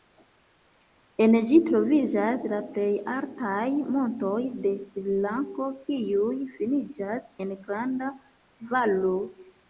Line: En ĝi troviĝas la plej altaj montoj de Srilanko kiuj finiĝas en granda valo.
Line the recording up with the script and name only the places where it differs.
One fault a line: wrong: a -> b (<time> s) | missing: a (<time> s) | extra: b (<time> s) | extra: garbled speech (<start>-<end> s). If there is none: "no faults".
no faults